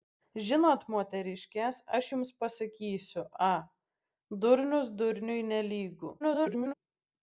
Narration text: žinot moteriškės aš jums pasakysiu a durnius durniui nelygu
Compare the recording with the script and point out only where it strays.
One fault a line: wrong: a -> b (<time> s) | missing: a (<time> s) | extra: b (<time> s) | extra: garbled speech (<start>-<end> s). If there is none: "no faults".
extra: garbled speech (6.2-6.7 s)